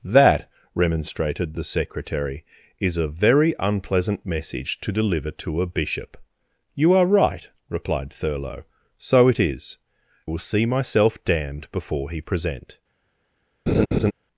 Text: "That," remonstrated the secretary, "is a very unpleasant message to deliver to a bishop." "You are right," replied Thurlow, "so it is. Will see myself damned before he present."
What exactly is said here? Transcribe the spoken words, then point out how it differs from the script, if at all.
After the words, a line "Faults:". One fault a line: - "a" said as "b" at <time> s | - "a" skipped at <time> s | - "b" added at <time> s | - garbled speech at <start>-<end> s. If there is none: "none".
"That," remonstrated the secretary, "is a very unpleasant message to deliver to a bishop." "You are right," replied Thurlow, "so it is. Will see myself damned before he present."
Faults:
none